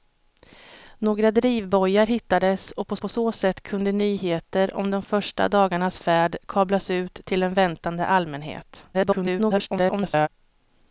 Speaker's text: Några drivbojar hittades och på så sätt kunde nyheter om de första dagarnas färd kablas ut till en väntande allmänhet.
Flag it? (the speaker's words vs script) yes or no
yes